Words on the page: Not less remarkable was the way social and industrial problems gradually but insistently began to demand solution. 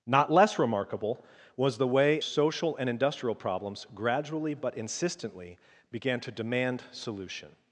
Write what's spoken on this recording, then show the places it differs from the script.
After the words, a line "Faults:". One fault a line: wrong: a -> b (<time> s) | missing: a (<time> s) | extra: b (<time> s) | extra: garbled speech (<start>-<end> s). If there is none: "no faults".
Not less remarkable was the way social and industrial problems gradually but insistently began to demand solution.
Faults:
no faults